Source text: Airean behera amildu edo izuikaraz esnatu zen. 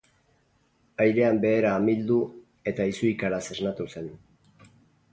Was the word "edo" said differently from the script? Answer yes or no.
yes